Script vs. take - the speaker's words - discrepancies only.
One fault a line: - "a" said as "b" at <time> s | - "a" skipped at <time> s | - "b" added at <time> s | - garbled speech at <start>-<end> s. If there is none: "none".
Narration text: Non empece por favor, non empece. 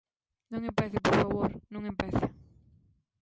none